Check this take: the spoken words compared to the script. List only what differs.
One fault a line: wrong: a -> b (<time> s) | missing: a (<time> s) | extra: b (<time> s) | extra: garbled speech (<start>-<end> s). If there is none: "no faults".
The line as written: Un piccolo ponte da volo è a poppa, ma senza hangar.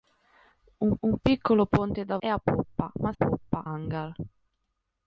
extra: un (1.0 s)
missing: volo (2.2 s)
wrong: senza -> poppa (3.1 s)